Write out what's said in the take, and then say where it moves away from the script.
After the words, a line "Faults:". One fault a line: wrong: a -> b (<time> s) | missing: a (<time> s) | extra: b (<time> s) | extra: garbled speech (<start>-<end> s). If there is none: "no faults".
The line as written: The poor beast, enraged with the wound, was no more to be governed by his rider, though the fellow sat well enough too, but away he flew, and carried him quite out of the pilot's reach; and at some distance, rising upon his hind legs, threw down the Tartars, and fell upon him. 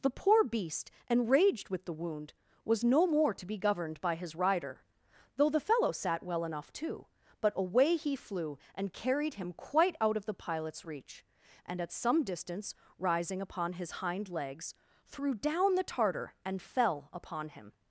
The poor beast, enraged with the wound, was no more to be governed by his rider, though the fellow sat well enough too, but away he flew, and carried him quite out of the pilot's reach; and at some distance, rising upon his hind legs, threw down the Tartar, and fell upon him.
Faults:
wrong: Tartars -> Tartar (15.8 s)